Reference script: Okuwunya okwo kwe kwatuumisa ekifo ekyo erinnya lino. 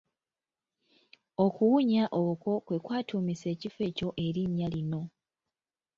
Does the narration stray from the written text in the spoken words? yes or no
no